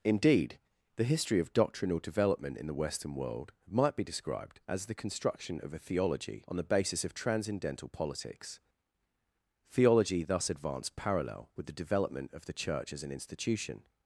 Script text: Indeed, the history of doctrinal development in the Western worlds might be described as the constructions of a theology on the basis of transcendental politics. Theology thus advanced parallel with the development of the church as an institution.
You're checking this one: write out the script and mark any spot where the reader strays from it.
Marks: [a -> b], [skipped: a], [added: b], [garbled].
Indeed, the history of doctrinal development in the Western [worlds -> world] might be described as the [constructions -> construction] of a theology on the basis of transcendental politics. Theology thus advanced parallel with the development of the church as an institution.